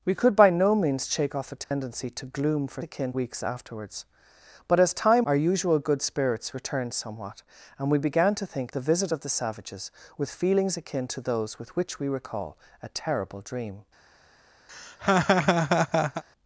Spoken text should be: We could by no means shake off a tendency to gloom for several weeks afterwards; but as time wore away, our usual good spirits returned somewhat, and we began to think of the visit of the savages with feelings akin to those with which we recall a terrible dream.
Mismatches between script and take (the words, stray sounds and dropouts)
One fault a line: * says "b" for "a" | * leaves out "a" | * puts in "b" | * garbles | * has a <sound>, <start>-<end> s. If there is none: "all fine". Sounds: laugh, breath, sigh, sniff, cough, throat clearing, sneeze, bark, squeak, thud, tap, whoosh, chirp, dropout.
* has a dropout, 1.6-1.7 s
* says "akin" for "several"
* leaves out "wore away"
* leaves out "of"
* has a laugh, 14.7-16.2 s